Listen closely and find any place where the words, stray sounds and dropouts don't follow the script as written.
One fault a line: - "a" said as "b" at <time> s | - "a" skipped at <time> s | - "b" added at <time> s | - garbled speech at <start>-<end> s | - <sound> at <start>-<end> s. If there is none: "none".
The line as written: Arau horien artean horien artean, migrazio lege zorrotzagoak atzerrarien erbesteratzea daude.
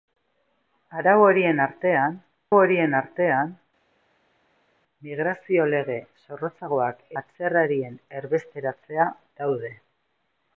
none